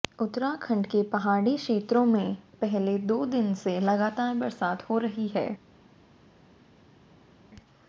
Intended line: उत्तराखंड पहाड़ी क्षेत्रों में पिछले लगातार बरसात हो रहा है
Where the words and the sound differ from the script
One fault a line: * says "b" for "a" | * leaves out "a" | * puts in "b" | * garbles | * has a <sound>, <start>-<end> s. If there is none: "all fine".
* puts in "के"
* puts in "दो दिन से"
* says "रही" for "रहा"